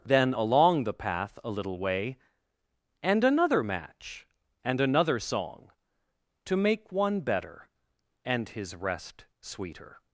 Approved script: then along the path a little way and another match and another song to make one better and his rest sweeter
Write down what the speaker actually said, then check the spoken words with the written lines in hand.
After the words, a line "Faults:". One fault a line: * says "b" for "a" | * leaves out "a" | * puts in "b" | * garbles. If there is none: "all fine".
then along the path a little way and another match and another song to make one better and his rest sweeter
Faults:
all fine